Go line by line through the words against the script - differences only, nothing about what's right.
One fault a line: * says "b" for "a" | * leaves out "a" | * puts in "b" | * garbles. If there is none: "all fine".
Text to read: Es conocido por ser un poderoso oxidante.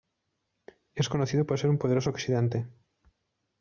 all fine